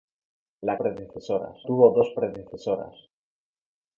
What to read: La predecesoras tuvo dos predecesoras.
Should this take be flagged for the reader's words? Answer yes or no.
no